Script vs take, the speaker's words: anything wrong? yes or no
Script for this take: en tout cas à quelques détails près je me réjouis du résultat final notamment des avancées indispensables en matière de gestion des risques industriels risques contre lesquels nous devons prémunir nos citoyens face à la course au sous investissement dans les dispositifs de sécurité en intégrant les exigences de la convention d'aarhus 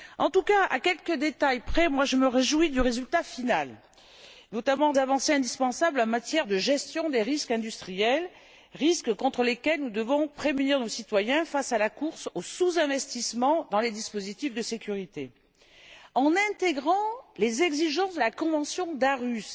yes